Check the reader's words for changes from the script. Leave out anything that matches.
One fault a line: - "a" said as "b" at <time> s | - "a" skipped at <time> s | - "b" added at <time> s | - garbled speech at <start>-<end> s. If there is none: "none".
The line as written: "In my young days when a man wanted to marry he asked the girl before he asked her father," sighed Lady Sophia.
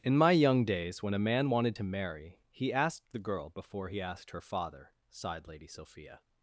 none